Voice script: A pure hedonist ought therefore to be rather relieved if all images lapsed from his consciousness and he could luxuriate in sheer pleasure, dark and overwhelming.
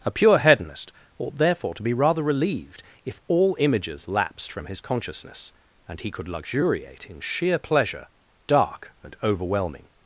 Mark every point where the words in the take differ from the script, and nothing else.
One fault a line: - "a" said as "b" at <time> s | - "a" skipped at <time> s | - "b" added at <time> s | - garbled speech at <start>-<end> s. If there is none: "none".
none